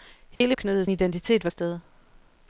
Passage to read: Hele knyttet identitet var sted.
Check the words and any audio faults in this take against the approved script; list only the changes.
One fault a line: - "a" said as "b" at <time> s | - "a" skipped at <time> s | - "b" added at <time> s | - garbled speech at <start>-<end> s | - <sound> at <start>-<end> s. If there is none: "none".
- dropout at 0.4-0.4 s